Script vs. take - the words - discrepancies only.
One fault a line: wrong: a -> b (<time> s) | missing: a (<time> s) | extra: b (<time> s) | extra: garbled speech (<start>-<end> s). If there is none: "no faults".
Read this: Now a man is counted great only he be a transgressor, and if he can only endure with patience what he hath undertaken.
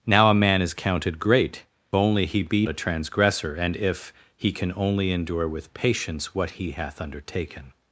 no faults